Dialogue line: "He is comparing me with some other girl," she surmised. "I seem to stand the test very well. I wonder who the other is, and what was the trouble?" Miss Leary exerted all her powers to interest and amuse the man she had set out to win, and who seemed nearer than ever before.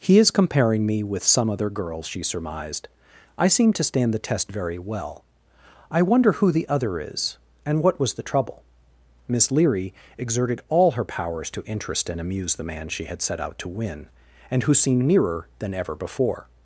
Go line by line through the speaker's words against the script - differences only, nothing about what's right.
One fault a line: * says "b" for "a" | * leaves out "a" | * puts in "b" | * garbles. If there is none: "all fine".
all fine